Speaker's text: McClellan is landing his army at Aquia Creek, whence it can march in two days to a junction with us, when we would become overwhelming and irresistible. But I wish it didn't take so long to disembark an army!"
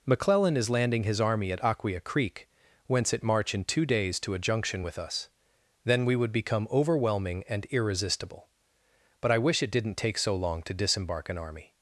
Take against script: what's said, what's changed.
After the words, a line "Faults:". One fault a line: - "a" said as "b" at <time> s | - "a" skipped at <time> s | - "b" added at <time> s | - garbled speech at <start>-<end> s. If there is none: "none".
McClellan is landing his army at Aquia Creek, whence it march in two days to a junction with us, then we would become overwhelming and irresistible. But I wish it didn't take so long to disembark an army!"
Faults:
- "can" skipped at 3.2 s
- "when" said as "then" at 5.8 s